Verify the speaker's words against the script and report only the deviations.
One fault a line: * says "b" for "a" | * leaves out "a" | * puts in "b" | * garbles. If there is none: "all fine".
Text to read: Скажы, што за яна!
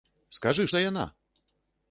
* leaves out "што"